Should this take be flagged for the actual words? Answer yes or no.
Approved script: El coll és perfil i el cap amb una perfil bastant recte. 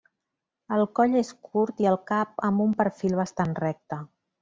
yes